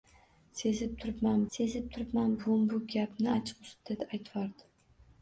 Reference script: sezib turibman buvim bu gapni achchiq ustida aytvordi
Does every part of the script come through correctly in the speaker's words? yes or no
no